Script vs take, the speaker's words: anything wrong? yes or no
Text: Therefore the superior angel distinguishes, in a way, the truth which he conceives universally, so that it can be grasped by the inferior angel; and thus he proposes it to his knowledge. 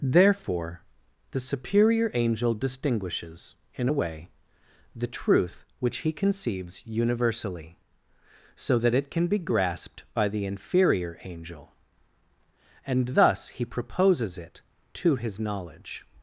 no